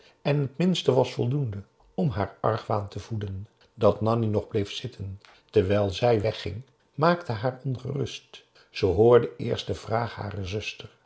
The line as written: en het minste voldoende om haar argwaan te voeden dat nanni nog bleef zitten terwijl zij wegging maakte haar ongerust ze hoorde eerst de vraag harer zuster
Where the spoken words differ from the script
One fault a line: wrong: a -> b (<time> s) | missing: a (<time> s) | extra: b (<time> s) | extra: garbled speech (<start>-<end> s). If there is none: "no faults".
extra: was (0.9 s)